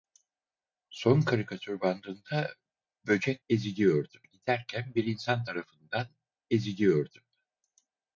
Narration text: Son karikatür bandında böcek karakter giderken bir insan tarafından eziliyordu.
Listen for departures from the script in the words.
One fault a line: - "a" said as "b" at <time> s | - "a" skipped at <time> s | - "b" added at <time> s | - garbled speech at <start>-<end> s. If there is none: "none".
- "karakter" said as "eziliyordu" at 3.5 s